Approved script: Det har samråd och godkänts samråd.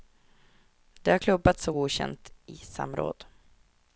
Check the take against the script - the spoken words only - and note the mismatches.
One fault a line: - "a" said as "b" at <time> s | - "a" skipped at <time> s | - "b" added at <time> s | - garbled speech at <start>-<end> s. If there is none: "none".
- "samråd" said as "klubbats" at 1.2 s
- "i" added at 2.5 s